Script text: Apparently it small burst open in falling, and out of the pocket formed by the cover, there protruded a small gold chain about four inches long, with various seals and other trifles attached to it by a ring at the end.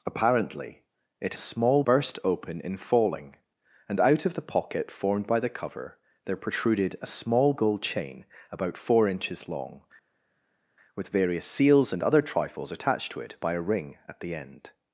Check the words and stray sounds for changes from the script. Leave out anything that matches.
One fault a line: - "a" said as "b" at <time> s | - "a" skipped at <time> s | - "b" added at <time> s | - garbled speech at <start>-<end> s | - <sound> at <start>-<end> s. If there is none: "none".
none